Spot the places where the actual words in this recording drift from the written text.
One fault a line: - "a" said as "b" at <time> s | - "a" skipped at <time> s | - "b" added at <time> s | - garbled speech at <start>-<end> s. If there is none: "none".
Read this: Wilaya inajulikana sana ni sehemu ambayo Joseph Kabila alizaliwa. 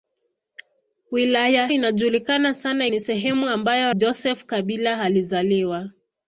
none